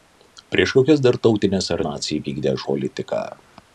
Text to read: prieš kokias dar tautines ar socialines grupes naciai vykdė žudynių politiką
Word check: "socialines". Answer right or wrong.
wrong